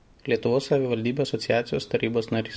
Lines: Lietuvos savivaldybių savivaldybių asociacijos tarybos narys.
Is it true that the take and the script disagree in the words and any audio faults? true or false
true